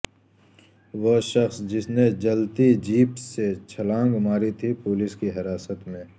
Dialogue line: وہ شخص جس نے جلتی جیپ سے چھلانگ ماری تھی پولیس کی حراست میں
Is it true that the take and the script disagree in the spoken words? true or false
false